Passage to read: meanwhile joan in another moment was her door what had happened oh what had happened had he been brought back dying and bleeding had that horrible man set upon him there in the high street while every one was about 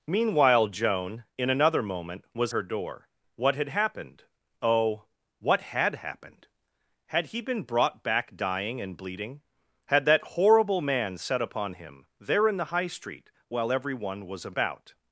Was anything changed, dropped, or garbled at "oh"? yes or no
no